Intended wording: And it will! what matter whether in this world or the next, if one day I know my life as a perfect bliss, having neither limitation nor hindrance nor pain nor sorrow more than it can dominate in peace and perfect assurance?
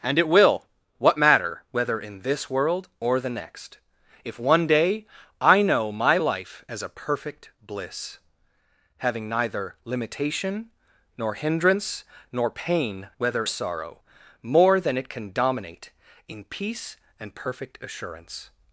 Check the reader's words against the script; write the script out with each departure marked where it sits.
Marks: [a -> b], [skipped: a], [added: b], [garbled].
And it will! what matter whether in this world or the next, if one day I know my life as a perfect bliss, having neither limitation nor hindrance nor pain [nor -> whether] sorrow more than it can dominate in peace and perfect assurance?